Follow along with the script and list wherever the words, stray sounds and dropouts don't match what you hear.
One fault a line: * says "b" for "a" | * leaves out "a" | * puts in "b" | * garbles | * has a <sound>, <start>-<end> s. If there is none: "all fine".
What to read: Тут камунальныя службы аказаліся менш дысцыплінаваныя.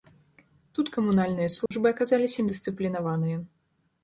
* has a dropout, 1.7-1.7 s
* leaves out "менш"